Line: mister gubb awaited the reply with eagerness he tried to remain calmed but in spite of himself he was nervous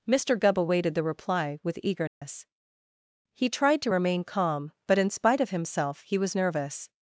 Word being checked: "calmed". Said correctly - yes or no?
no